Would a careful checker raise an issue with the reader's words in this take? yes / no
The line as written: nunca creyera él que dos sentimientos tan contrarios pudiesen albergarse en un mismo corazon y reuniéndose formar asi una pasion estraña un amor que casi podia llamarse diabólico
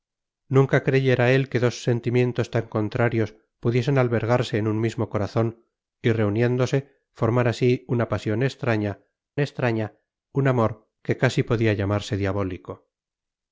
yes